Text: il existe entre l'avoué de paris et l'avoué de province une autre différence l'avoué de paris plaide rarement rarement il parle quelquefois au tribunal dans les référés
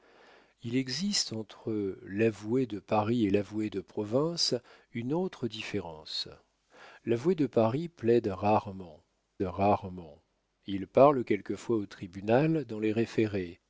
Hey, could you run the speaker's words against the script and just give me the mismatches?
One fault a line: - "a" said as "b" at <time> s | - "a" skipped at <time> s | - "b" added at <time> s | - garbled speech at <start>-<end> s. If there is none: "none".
none